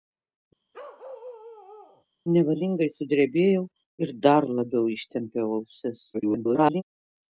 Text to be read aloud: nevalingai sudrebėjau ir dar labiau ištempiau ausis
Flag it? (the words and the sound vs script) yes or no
yes